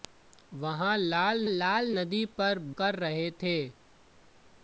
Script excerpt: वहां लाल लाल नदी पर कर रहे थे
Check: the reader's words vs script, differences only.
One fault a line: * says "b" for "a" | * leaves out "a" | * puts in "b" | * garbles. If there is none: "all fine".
all fine